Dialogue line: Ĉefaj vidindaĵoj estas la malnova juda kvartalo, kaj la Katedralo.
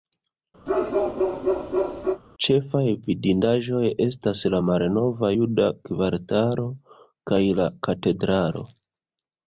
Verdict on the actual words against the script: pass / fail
pass